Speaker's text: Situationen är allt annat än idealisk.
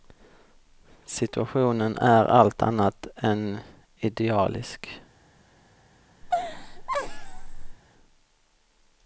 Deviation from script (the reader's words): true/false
false